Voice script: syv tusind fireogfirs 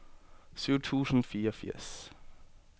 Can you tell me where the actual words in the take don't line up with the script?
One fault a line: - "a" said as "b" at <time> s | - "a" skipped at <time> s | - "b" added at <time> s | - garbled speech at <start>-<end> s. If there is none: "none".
none